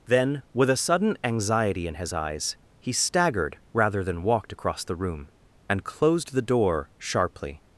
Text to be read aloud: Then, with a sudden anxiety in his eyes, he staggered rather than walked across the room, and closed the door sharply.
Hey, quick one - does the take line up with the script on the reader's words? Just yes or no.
yes